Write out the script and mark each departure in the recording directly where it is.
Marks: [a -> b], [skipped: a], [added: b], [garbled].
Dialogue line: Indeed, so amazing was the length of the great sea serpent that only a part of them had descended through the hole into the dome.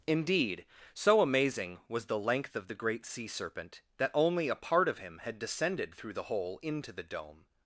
Indeed, so amazing was the length of the great sea serpent that only a part of [them -> him] had descended through the hole into the dome.